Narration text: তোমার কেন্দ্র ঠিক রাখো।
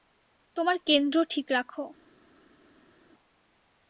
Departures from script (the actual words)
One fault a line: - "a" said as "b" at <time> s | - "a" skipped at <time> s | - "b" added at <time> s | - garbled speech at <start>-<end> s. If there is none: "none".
none